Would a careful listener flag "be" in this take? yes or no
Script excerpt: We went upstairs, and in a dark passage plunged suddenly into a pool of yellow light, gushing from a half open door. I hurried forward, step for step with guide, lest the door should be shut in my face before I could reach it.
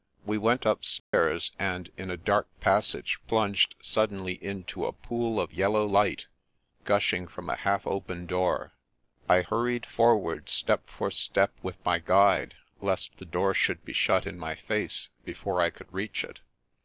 no